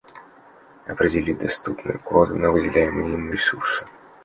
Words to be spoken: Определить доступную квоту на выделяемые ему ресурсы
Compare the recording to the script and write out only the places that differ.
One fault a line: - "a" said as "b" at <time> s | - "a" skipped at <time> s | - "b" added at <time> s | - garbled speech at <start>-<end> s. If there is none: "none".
none